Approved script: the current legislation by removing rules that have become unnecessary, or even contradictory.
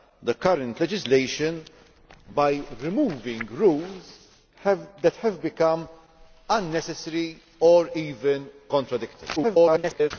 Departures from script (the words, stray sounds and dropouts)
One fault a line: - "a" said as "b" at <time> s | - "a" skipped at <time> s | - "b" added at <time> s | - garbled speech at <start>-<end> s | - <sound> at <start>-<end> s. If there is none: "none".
- garbled speech at 9.4-10.1 s